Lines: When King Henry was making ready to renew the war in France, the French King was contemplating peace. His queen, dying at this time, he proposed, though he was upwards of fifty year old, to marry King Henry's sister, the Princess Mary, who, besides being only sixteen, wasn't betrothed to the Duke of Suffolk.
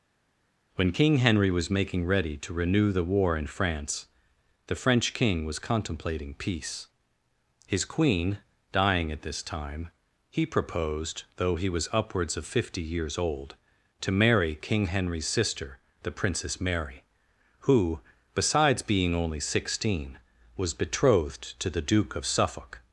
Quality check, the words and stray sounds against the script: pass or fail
fail